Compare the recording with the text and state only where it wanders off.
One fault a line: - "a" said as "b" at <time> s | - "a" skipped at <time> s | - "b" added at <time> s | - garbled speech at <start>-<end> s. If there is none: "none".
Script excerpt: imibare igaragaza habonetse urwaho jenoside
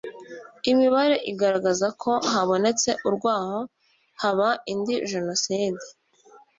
- "ko" added at 2.0 s
- "haba indi" added at 4.2 s